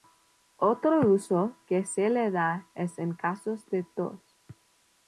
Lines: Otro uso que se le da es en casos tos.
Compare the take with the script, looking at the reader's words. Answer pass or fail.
fail